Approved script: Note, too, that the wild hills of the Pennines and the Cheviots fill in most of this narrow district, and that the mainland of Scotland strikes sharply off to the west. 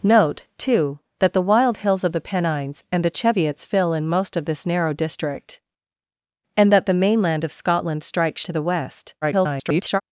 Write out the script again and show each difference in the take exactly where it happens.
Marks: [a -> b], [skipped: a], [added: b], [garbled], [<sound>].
Note, too, that the wild hills of the Pennines and the Cheviots fill in most of this narrow district, and that the mainland of Scotland strikes [skipped: sharply off] to the west. [garbled]